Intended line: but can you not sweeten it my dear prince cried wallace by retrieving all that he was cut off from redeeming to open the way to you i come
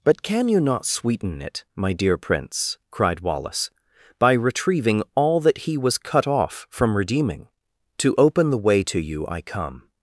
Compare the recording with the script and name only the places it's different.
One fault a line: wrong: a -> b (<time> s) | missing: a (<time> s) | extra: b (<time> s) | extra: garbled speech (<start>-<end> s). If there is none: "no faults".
no faults